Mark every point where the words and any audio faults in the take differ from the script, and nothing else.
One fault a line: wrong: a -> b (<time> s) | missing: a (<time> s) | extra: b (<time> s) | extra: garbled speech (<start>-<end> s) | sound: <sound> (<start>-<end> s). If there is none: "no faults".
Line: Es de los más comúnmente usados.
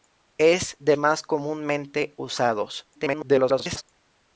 missing: los (0.9 s)
extra: garbled speech (2.9-3.8 s)